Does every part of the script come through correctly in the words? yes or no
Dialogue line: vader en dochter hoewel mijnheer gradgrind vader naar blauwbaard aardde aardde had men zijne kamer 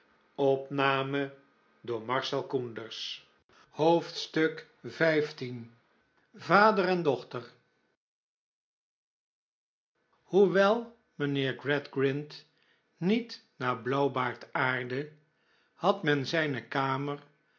no